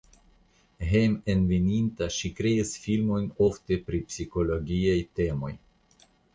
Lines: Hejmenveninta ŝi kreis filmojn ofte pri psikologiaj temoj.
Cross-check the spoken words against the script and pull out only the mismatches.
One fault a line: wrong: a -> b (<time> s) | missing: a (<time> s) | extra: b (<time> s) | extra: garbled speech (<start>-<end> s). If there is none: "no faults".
no faults